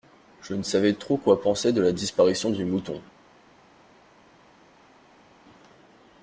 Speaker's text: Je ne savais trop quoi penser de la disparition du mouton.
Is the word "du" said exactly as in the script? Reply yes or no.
yes